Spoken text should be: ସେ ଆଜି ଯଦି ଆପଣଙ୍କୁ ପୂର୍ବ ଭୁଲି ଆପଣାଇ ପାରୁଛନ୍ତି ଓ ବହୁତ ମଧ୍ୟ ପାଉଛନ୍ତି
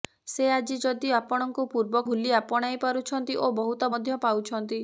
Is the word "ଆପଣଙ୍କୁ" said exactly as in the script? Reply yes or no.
yes